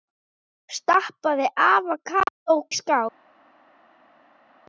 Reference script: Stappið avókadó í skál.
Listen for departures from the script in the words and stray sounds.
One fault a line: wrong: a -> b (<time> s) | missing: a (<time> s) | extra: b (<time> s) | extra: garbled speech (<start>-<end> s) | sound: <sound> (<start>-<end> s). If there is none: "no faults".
no faults